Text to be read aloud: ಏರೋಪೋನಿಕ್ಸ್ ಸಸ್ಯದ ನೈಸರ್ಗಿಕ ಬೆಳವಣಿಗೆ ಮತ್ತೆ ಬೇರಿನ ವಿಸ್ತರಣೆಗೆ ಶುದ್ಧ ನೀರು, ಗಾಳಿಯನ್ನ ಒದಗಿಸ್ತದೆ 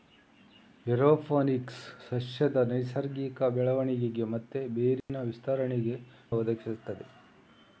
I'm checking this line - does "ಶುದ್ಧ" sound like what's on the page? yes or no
no